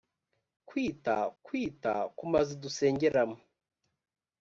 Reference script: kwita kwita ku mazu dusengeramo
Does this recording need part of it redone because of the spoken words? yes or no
no